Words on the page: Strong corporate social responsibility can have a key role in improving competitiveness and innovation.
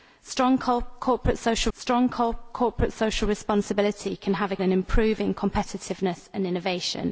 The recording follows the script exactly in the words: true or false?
false